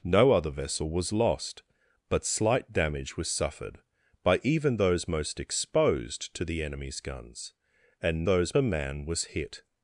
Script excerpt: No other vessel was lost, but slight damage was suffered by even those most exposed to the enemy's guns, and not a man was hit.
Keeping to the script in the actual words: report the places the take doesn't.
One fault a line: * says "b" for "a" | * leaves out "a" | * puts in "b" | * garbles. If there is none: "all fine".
* says "those" for "not"